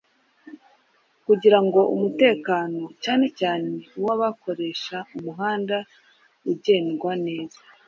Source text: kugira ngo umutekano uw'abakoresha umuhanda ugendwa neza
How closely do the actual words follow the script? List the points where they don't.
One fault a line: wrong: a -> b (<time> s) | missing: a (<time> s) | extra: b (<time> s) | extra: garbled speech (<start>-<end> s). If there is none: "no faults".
extra: cyane cyane (3.0 s)